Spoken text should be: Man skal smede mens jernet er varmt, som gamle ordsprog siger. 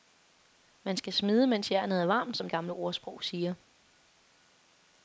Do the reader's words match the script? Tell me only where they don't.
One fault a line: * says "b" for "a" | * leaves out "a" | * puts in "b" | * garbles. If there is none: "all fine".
all fine